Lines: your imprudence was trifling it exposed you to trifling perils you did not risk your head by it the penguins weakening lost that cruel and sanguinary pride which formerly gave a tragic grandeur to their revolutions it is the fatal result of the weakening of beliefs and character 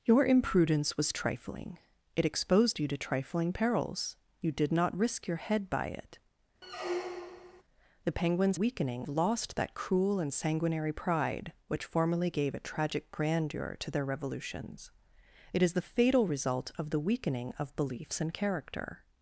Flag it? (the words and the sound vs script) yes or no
yes